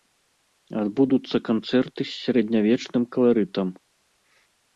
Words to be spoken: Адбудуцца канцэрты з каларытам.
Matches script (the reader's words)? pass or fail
fail